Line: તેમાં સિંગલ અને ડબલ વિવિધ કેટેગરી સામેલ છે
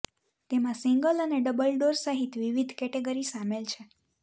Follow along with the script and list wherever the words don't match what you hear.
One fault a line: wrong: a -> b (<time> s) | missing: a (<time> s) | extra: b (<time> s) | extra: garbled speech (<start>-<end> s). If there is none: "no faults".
extra: ડોર સહિત (1.8 s)